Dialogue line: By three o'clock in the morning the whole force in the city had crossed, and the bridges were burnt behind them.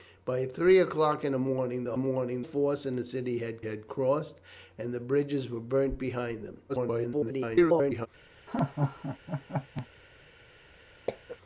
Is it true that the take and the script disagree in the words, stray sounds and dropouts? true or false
true